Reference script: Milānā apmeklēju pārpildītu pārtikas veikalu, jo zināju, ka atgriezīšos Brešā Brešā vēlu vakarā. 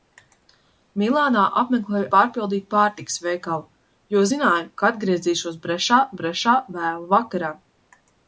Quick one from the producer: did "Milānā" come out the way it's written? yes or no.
yes